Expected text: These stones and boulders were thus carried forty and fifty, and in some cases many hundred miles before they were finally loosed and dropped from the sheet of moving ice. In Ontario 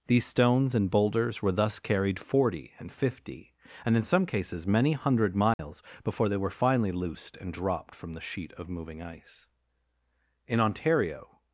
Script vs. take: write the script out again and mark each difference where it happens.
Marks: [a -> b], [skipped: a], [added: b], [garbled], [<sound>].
These stones and boulders were thus carried forty and fifty, and in some cases many hundred miles [dropout] before they were finally loosed and dropped from the sheet of moving ice. In Ontario